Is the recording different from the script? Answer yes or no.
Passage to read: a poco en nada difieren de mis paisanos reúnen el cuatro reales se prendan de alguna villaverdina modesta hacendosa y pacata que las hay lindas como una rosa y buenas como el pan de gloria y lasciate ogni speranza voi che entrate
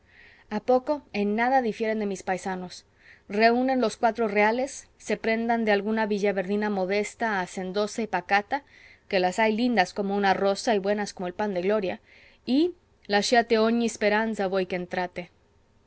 yes